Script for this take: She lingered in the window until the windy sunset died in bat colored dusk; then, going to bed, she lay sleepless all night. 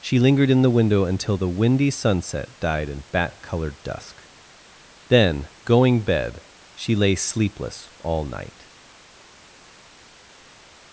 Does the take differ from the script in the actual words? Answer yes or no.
yes